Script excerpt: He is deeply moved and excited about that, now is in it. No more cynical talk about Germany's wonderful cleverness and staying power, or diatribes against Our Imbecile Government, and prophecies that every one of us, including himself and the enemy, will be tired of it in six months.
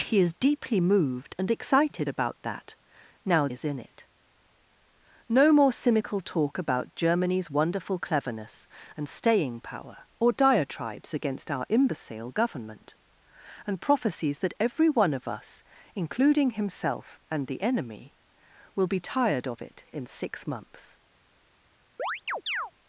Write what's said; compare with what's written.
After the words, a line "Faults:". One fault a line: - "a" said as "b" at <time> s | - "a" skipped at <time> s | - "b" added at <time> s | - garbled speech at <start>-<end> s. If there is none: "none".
He is deeply moved and excited about that, now is in it. No more cynical talk about Germany's wonderful cleverness and staying power, or diatribes against Our Imbecile Government, and prophecies that every one of us, including himself and the enemy, will be tired of it in six months.
Faults:
none